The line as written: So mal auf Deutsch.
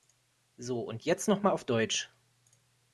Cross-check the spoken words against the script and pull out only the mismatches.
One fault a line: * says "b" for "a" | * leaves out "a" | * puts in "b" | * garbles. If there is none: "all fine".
* puts in "und jetzt noch"